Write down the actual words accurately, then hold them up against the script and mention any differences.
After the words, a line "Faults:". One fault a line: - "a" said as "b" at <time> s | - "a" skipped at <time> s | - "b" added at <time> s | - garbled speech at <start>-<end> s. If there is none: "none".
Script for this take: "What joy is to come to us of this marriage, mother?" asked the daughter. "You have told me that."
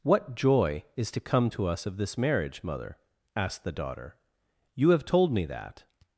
"What joy is to come to us of this marriage, mother?" asked the daughter. "You have told me that."
Faults:
none